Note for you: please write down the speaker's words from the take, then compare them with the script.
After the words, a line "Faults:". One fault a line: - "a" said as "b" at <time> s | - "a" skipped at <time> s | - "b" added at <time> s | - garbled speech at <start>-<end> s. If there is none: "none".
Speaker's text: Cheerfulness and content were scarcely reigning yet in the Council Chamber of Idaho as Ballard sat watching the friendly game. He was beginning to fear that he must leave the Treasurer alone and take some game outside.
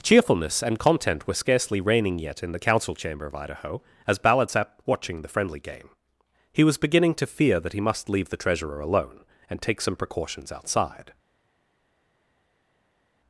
Cheerfulness and content were scarcely reigning yet in the Council Chamber of Idaho as Ballard sat watching the friendly game. He was beginning to fear that he must leave the Treasurer alone and take some precautions outside.
Faults:
- "game" said as "precautions" at 10.0 s